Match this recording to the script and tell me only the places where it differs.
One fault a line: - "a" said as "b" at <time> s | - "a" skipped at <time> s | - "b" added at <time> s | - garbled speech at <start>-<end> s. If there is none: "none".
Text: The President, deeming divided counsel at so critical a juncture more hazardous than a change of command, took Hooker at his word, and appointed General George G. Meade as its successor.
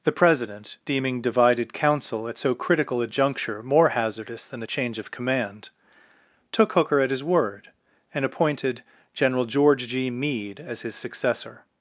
- "its" said as "his" at 10.8 s